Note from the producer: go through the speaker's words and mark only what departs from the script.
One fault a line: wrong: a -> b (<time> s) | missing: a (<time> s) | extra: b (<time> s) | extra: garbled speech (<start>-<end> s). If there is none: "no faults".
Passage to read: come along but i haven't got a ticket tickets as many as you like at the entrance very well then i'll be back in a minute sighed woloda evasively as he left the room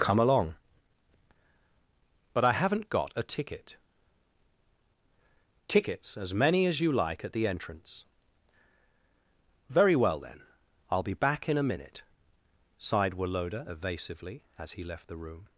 no faults